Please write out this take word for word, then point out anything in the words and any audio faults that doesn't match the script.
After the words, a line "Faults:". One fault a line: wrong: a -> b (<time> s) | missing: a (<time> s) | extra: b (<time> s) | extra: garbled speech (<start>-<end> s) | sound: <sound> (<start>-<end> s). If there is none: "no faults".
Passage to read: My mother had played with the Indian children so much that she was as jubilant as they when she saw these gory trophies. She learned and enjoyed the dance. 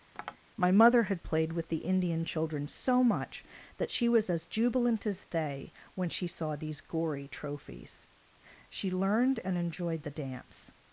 My mother had played with the Indian children so much that she was as jubilant as they when she saw these gory trophies. She learned and enjoyed the dance.
Faults:
sound: tap (0.1-0.4 s)